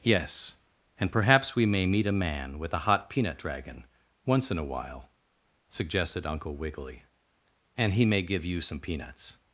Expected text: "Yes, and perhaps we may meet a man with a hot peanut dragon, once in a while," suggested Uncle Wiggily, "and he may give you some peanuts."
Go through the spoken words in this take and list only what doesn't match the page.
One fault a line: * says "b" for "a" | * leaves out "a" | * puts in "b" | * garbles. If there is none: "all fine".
all fine